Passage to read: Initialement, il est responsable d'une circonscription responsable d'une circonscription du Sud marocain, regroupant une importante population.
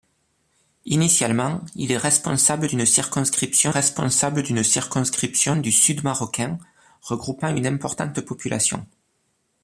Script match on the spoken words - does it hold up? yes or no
yes